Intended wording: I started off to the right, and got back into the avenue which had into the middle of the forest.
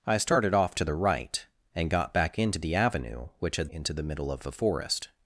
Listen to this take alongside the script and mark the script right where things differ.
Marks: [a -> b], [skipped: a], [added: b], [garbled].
I started off to the right, and got back into the avenue which had into the middle of the forest.